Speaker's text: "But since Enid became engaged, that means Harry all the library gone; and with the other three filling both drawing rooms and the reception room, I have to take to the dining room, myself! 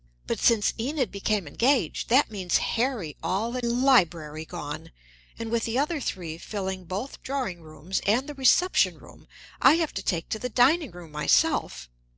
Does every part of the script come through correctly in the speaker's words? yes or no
yes